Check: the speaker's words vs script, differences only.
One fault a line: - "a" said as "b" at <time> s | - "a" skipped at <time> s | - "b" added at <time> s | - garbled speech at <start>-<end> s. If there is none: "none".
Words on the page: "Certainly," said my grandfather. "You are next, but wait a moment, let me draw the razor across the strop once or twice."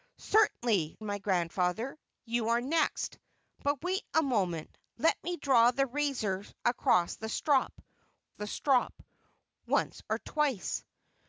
- "said" skipped at 1.0 s
- "the strop" added at 8.3 s